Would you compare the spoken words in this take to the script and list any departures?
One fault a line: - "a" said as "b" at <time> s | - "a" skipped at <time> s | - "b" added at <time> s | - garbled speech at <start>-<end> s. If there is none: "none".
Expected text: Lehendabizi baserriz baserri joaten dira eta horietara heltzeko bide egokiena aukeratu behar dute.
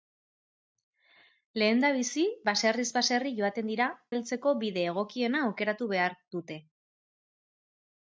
- "eta horietara" skipped at 3.9 s